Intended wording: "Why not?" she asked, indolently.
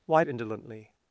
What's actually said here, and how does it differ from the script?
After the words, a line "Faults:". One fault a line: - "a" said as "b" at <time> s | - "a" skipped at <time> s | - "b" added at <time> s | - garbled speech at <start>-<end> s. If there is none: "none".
"Why indolently.
Faults:
- "not she asked" skipped at 0.2 s